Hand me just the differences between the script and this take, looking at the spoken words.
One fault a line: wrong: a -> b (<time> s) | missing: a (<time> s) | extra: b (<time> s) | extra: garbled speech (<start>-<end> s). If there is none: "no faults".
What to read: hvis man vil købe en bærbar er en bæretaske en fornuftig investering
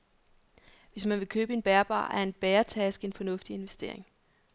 no faults